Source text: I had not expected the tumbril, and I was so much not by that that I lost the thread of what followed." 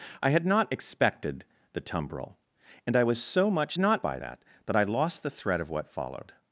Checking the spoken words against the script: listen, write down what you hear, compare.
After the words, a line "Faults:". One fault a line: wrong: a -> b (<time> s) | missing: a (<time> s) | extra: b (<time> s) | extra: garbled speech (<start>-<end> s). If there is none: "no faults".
I had not expected the tumbril, and I was so much not by that that I lost the thread of what followed."
Faults:
no faults